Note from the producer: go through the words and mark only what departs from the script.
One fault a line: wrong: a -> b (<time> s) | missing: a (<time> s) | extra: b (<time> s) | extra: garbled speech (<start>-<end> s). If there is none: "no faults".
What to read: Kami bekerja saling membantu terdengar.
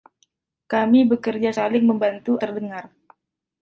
no faults